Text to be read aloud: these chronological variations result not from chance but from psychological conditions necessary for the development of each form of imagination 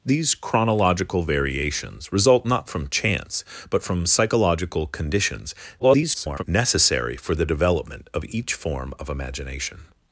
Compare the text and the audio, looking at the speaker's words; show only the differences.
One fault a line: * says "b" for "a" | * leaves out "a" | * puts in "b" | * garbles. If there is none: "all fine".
* garbles